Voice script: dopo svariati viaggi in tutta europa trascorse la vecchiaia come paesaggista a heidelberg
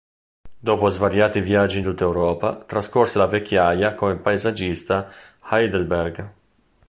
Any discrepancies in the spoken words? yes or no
no